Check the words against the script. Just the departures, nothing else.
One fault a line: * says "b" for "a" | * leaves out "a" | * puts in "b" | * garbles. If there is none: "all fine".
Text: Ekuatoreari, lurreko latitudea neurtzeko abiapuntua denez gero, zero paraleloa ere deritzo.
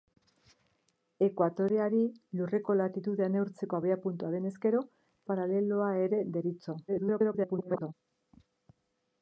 * leaves out "zero"
* garbles